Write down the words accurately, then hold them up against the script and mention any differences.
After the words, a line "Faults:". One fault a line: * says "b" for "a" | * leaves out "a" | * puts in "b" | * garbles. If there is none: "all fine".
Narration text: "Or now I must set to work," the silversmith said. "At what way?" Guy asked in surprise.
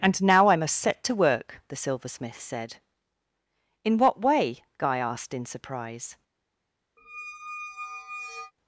"And now I must set to work," the silversmith said. "In what way?" Guy asked in surprise.
Faults:
* says "And" for "Or"
* says "In" for "At"